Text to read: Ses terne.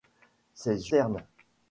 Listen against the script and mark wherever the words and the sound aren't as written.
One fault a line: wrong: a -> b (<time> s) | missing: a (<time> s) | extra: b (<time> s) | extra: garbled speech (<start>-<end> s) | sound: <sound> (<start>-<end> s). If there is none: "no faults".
no faults